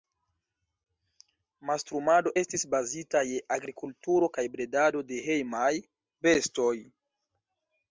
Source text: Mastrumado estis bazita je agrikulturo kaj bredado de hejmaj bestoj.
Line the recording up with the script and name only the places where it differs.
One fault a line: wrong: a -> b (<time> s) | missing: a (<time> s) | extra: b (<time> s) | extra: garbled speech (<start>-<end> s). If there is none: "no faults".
no faults